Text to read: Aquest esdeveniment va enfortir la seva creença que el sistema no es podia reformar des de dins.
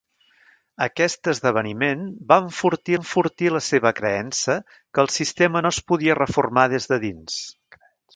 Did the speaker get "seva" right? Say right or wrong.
right